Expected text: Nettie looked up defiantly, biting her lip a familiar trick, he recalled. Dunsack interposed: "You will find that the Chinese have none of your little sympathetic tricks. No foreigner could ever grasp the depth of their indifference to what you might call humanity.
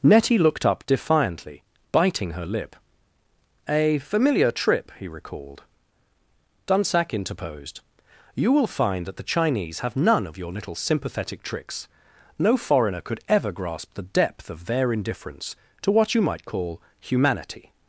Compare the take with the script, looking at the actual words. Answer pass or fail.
fail